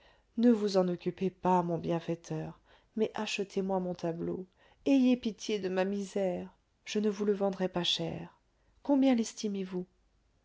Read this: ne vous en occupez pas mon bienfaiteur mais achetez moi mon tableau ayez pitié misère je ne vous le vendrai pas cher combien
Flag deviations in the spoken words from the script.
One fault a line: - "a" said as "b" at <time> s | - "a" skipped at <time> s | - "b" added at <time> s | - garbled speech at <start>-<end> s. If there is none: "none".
- "de ma" added at 5.6 s